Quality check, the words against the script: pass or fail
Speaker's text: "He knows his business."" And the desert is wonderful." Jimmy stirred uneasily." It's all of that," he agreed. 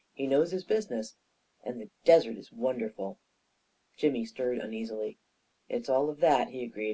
pass